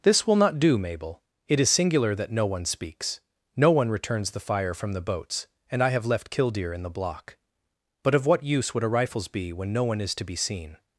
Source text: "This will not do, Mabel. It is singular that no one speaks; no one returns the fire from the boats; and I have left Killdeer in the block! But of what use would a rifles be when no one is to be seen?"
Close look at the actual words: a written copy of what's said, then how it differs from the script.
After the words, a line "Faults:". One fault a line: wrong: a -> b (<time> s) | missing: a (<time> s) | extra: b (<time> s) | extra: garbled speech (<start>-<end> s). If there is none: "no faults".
"This will not do, Mabel. It is singular that no one speaks; no one returns the fire from the boats; and I have left Killdeer in the block! But of what use would a rifles be when no one is to be seen?"
Faults:
no faults